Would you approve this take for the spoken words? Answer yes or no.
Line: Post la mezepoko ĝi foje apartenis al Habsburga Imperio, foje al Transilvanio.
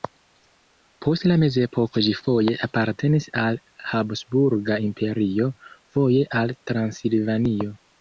yes